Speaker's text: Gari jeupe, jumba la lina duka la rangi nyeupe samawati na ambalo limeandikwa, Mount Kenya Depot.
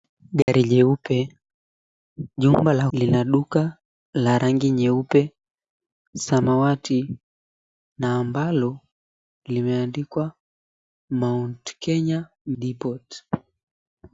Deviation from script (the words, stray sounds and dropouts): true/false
true